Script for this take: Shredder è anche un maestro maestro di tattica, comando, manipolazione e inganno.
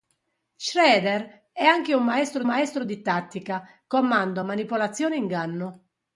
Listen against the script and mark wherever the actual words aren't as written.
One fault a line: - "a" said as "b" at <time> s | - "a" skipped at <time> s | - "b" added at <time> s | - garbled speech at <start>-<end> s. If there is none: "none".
none